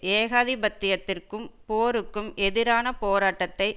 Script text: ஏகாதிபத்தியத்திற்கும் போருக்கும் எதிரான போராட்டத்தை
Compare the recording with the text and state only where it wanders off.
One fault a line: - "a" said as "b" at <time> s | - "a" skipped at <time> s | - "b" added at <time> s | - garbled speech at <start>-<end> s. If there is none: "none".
none